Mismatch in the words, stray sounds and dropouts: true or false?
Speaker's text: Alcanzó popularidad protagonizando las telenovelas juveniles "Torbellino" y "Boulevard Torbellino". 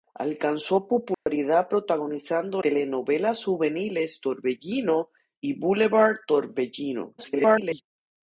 true